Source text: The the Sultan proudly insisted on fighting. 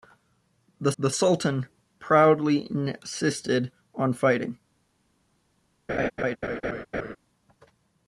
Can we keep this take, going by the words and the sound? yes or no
no